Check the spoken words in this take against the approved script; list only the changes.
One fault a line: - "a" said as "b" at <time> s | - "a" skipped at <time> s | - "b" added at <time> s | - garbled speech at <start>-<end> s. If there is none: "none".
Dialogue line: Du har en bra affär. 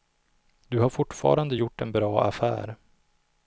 - "fortfarande gjort" added at 0.9 s